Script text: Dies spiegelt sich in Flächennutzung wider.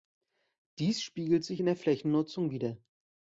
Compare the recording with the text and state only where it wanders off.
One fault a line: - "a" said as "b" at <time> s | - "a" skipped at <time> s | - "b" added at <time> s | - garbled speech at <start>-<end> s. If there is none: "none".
- "der" added at 1.6 s